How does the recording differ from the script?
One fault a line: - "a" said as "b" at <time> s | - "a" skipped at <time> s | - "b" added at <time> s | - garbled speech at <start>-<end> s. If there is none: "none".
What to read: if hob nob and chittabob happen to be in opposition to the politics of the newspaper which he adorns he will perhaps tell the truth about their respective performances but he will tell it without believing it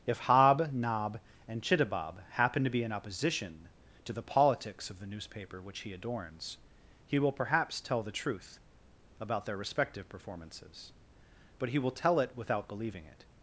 none